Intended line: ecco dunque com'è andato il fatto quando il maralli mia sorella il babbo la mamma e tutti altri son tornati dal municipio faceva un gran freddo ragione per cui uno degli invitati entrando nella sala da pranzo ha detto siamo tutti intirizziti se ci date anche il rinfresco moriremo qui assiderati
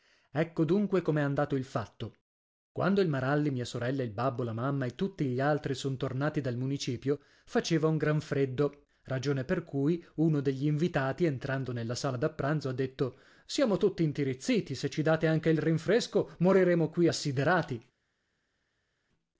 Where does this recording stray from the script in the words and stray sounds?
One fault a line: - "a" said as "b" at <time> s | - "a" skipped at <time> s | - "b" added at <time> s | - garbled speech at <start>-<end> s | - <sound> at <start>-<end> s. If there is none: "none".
- "gli" added at 5.2 s